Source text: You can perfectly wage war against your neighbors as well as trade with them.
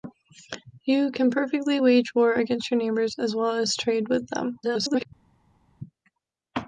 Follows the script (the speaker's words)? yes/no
no